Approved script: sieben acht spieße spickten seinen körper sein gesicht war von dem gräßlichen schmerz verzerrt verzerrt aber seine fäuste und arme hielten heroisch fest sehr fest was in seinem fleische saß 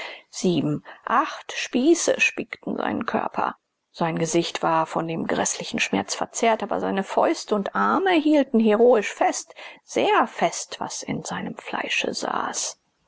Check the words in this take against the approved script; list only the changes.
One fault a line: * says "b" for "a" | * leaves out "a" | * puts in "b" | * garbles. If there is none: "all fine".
* leaves out "verzerrt"